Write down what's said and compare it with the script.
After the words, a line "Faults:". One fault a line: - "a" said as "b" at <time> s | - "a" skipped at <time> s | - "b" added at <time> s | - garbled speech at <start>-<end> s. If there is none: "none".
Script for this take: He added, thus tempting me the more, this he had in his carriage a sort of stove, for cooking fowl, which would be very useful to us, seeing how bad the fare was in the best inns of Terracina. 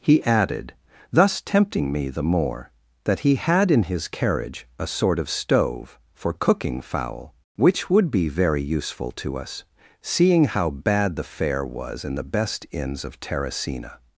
He added, thus tempting me the more, that he had in his carriage a sort of stove, for cooking fowl, which would be very useful to us, seeing how bad the fare was in the best inns of Terracina.
Faults:
- "this" said as "that" at 3.0 s